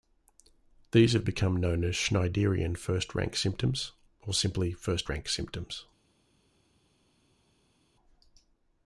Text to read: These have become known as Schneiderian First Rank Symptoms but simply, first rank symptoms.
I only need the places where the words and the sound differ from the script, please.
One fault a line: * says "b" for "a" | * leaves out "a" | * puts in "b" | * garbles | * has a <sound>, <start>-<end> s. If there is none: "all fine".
* says "or" for "but"